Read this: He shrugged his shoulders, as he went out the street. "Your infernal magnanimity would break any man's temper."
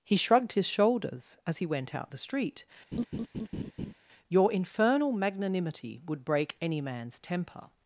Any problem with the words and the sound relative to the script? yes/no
yes